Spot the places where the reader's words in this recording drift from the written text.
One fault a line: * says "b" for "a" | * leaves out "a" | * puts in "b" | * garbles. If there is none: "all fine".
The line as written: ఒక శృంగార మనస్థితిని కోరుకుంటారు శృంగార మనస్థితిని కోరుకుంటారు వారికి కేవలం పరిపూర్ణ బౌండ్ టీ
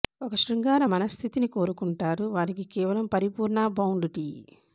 * leaves out "శృంగార మనస్థితిని కోరుకుంటారు"